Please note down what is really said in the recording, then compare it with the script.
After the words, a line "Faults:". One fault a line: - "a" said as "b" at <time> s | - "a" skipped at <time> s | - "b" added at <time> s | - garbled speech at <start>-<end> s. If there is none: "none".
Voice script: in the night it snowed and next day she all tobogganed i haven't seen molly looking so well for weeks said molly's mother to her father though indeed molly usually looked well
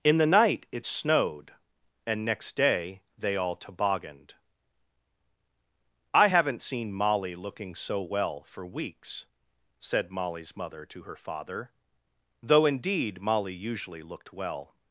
in the night it snowed and next day they all tobogganed i haven't seen molly looking so well for weeks said molly's mother to her father though indeed molly usually looked well
Faults:
- "she" said as "they" at 3.2 s